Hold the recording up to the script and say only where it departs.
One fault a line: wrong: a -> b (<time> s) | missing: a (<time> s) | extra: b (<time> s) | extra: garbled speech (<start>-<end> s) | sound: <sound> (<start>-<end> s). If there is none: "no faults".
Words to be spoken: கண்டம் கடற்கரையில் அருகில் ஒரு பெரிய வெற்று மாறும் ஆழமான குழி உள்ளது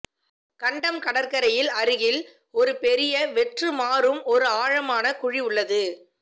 extra: ஒரு (4.3 s)